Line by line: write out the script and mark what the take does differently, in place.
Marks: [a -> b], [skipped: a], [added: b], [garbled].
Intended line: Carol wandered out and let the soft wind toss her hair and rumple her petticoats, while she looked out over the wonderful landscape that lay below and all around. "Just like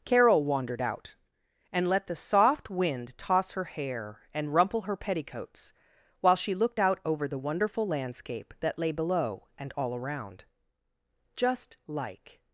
Carol wandered out and let the soft wind toss her hair and rumple her petticoats, while she looked out over the wonderful landscape that lay below and all around. "Just like